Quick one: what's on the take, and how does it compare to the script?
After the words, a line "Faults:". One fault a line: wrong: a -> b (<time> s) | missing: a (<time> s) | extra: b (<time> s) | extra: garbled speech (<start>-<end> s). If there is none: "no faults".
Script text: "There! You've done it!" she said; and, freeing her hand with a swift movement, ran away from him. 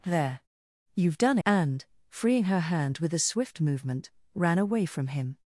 "There! You've done; and, freeing her hand with a swift movement, ran away from him.
Faults:
missing: it she said (1.4 s)